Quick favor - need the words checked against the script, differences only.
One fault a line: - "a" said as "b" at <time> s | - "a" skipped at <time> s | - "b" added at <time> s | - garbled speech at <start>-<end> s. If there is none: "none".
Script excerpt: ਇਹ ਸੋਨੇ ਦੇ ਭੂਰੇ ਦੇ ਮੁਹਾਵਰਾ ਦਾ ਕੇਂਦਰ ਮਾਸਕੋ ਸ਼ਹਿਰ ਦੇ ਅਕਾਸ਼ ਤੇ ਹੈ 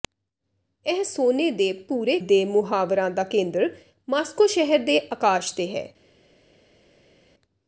none